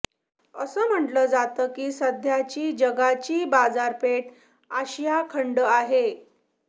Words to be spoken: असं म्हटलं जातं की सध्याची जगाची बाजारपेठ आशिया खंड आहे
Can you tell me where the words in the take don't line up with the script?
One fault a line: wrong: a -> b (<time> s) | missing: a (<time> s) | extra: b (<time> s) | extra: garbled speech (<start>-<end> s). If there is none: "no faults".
no faults